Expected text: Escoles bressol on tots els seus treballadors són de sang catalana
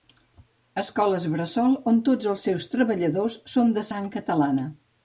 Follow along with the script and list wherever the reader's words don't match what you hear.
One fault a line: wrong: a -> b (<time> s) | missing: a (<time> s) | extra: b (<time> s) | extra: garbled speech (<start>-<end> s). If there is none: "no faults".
no faults